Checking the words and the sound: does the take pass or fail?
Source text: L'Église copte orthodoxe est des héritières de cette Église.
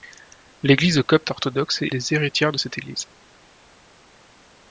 pass